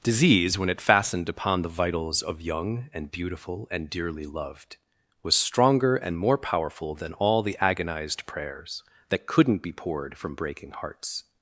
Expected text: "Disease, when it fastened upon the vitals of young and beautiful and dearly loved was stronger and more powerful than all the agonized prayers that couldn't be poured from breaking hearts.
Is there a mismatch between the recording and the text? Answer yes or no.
no